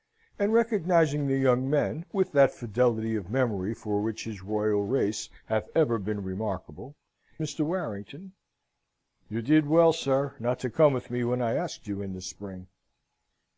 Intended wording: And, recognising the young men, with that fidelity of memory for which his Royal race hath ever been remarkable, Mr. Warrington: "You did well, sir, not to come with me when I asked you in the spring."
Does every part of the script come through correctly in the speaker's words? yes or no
yes